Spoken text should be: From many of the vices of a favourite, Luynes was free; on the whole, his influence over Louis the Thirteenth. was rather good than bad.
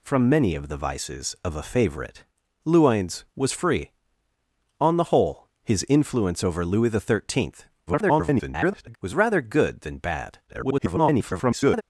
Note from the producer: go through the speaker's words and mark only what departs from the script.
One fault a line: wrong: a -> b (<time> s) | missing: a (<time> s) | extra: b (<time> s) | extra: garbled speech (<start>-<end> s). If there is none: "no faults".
extra: garbled speech (7.9-9.0 s)
extra: garbled speech (10.5-11.8 s)